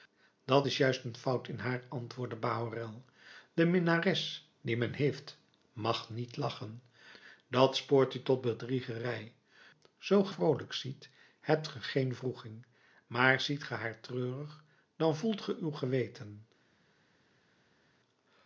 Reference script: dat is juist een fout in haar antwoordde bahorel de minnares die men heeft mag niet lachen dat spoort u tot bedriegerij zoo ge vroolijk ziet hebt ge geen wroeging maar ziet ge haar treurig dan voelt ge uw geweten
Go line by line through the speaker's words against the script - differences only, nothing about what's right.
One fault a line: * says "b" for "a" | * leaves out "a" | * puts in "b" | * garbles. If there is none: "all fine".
all fine